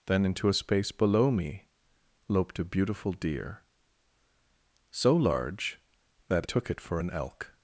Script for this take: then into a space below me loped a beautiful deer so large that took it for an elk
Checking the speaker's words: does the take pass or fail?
pass